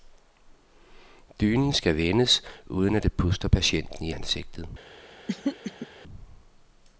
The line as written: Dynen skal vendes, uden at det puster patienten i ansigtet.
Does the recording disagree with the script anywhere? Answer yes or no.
no